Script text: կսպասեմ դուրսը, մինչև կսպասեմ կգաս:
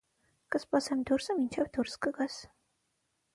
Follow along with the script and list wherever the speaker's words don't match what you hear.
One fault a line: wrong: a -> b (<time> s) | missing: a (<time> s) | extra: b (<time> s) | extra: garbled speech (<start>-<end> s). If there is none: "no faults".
wrong: կսպասեմ -> դուրս (1.8 s)